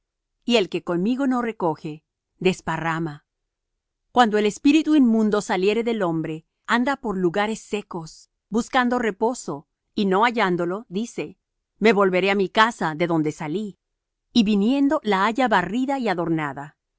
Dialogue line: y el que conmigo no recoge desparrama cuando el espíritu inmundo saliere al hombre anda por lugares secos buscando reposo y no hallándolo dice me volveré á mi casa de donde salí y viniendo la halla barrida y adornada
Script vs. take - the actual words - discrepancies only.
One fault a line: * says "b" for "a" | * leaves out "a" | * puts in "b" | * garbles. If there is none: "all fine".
* says "del" for "al"